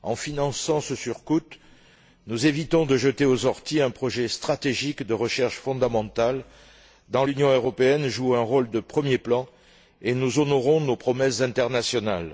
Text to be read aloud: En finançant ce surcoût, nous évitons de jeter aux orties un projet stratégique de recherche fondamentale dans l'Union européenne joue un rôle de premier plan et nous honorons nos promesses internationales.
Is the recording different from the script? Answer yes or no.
no